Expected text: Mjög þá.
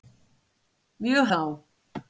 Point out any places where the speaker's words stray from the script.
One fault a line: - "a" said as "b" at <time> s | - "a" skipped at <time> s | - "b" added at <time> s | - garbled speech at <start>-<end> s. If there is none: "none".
none